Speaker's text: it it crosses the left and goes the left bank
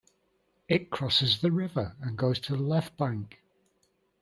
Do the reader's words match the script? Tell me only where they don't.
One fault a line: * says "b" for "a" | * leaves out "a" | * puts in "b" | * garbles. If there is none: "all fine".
* leaves out "it"
* says "river" for "left"
* puts in "to"